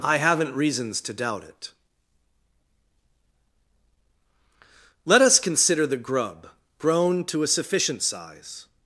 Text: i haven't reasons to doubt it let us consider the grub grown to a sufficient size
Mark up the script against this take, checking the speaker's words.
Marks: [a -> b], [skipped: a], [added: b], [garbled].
i haven't reasons to doubt it let us consider the grub grown to a sufficient size